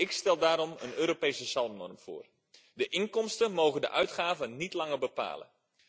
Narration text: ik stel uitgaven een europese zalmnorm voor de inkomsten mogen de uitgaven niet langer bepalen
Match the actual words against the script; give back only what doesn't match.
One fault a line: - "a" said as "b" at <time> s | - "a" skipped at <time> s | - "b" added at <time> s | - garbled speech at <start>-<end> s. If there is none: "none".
- "uitgaven" said as "daarom" at 0.4 s